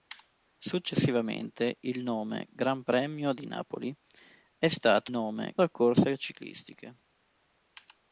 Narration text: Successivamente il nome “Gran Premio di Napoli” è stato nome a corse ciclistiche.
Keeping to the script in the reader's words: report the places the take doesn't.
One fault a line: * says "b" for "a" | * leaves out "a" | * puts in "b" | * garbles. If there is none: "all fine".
all fine